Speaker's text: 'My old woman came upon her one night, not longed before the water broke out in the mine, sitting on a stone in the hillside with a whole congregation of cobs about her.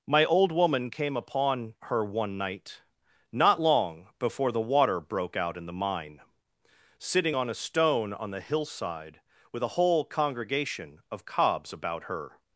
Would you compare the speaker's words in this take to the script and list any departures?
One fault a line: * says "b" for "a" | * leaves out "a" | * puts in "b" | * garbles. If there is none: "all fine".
* says "long" for "longed"
* says "on" for "in"